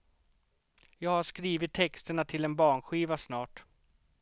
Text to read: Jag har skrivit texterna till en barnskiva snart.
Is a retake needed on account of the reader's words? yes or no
no